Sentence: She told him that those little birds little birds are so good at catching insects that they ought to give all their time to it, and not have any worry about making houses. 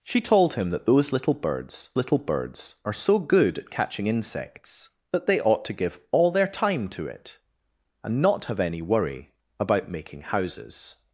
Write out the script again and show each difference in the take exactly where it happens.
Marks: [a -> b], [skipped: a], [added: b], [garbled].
She told him that those little birds little birds are so good at catching insects that they ought to give all their time to it, and not have any worry about making houses.